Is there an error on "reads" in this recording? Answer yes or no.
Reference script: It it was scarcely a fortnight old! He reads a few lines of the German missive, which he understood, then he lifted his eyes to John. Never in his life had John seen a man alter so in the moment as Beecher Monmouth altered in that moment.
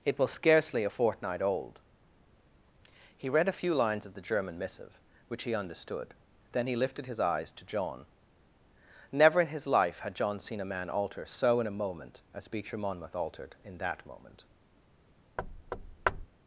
yes